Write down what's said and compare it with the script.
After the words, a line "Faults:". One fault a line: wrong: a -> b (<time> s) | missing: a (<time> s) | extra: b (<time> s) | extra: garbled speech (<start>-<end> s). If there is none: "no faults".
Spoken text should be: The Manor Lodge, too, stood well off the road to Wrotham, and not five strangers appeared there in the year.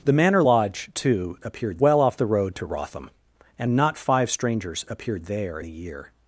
The Manor Lodge, too, appeared well off the road to Wrotham, and not five strangers appeared there the year.
Faults:
wrong: stood -> appeared (1.4 s)
missing: in (5.6 s)